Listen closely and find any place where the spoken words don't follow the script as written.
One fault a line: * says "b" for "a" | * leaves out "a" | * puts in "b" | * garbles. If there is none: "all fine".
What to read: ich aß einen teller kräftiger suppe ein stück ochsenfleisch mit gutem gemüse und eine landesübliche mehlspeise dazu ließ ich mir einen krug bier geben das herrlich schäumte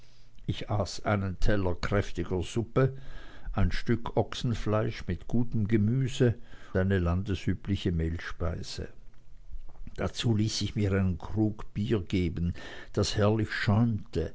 * leaves out "und"